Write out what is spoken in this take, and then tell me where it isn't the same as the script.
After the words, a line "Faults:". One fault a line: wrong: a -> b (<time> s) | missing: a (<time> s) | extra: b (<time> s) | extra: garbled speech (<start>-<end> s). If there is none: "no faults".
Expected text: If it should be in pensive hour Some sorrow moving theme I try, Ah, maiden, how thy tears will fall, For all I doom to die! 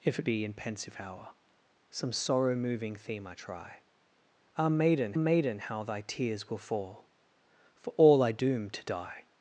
If it be in pensive hour Some sorrow moving theme I try, Ah, maiden maiden, how thy tears will fall, For all I doom to die!
Faults:
missing: should (0.3 s)
extra: maiden (5.1 s)